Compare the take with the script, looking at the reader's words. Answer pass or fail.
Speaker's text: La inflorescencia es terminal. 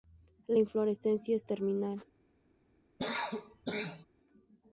pass